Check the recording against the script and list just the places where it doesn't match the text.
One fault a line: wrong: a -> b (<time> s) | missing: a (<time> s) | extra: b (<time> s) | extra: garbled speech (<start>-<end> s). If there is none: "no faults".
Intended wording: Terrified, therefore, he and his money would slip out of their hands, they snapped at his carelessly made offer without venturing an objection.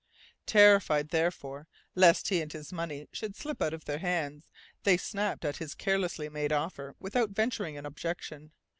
extra: lest (1.9 s)
wrong: would -> should (3.1 s)